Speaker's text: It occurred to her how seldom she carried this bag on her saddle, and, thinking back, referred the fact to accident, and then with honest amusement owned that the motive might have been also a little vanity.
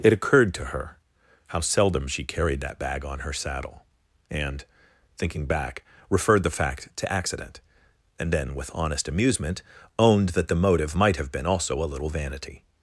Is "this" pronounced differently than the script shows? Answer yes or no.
yes